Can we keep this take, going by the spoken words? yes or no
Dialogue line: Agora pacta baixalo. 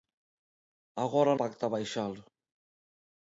yes